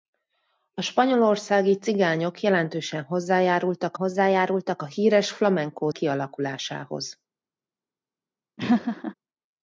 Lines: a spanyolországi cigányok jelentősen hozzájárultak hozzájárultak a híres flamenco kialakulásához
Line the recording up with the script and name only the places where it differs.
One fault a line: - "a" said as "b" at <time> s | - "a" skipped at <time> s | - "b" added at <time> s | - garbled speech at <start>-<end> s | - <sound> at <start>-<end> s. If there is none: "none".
- laugh at 8.6-9.1 s